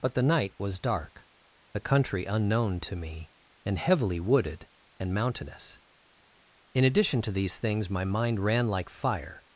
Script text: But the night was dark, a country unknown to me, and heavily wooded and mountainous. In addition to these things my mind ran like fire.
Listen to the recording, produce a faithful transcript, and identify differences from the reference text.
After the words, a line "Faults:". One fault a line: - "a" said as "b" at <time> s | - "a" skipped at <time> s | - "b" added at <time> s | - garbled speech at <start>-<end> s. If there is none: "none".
But the night was dark, a country unknown to me, and heavily wooded and mountainous. In addition to these things my mind ran like fire.
Faults:
none